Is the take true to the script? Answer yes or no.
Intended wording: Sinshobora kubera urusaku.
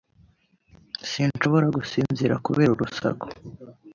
no